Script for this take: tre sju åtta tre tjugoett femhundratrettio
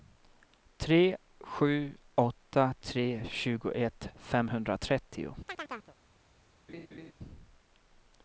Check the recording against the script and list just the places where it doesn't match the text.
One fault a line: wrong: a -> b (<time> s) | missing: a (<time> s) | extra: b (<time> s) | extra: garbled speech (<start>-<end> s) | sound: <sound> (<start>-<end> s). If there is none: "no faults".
sound: chirp (5.5-6.0 s)
sound: laugh (6.7-7.1 s)